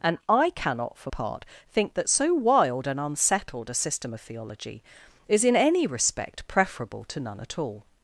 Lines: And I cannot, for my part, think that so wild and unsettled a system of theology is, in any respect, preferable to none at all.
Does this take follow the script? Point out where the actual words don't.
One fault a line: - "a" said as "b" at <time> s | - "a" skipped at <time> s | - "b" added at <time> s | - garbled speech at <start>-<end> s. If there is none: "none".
- "my" skipped at 1.1 s